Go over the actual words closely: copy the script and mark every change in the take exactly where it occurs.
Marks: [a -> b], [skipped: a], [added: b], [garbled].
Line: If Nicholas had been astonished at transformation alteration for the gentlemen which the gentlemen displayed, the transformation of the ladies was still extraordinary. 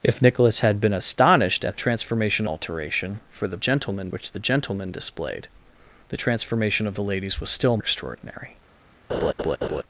If Nicholas had been astonished at transformation alteration for the gentlemen which the gentlemen displayed, the transformation of the ladies was still extraordinary.